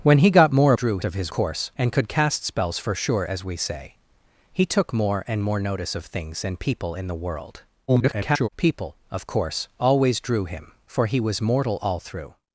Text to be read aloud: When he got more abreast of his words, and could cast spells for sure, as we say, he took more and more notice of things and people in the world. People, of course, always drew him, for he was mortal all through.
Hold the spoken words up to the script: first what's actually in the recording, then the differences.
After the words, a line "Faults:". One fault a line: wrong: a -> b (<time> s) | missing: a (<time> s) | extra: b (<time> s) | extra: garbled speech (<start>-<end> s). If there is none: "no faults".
When he got more drew of his course, and could cast spells for sure, as we say, he took more and more notice of things and people in the world. [garbled] People, of course, always drew him, for he was mortal all through.
Faults:
wrong: abreast -> drew (0.7 s)
wrong: words -> course (1.3 s)
extra: garbled speech (7.9-8.5 s)